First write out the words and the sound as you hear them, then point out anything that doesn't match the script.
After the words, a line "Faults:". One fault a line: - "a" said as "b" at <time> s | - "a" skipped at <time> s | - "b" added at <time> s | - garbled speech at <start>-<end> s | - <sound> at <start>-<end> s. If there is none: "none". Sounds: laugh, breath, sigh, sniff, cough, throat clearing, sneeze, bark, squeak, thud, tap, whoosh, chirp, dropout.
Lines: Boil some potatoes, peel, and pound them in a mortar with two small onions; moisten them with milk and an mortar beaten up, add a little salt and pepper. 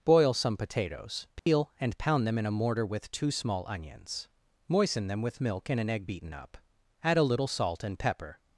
Boil some potatoes, peel, and pound them in a mortar with two small onions; moisten them with milk and an egg beaten up, add a little salt and pepper.
Faults:
- dropout at 1.4-1.5 s
- "mortar" said as "egg" at 5.9 s